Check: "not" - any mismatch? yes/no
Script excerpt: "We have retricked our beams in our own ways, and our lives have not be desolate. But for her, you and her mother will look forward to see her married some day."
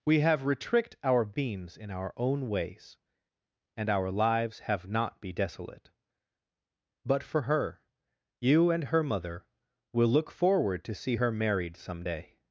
no